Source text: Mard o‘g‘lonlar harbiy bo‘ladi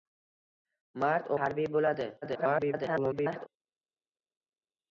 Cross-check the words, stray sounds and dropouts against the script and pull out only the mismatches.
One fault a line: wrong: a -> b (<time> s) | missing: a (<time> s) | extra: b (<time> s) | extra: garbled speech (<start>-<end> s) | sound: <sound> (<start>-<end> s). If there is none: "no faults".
missing: o‘g‘lonlar (1.3 s)
extra: garbled speech (2.2-3.5 s)